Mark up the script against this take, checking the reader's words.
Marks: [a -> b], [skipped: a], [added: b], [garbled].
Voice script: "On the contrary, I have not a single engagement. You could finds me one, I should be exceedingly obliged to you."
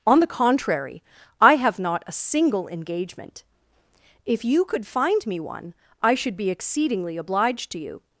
"On the contrary, I have not a single engagement. [added: If] You could [finds -> find] me one, I should be exceedingly obliged to you."